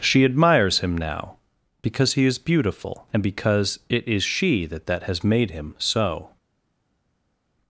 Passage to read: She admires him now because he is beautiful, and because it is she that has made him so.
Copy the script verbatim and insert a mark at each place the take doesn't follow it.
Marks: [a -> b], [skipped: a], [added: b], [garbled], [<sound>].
She admires him now because he is beautiful, and because it is she that [added: that] has made him so.